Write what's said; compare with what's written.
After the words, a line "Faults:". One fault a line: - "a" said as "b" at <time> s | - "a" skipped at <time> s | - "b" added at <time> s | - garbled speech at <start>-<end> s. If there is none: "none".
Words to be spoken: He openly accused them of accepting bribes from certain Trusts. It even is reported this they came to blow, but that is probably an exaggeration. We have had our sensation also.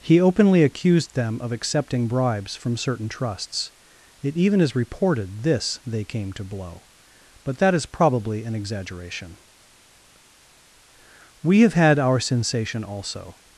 He openly accused them of accepting bribes from certain Trusts. It even is reported this they came to blow, but that is probably an exaggeration. We have had our sensation also.
Faults:
none